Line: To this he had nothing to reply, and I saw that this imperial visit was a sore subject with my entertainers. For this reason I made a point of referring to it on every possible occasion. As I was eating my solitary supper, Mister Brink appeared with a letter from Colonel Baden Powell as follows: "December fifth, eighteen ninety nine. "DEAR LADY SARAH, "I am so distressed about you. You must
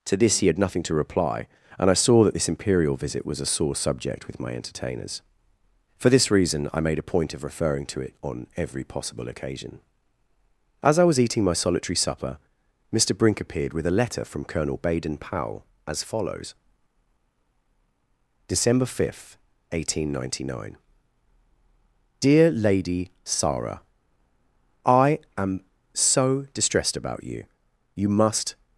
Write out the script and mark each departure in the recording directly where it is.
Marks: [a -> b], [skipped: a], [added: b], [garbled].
To this he had nothing to reply, and I saw that this imperial visit was a sore subject with my entertainers. For this reason I made a point of referring to it on every possible occasion. As I was eating my solitary supper, Mister Brink appeared with a letter from Colonel Baden Powell as follows: "December fifth, eighteen ninety nine. "DEAR LADY SARAH, "I am so distressed about you. You must